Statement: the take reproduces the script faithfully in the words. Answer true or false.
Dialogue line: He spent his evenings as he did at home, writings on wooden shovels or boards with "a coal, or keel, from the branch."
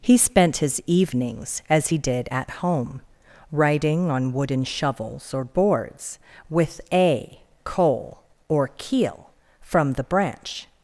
false